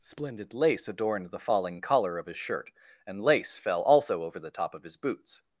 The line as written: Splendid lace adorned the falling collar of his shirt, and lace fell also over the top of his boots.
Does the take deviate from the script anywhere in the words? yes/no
no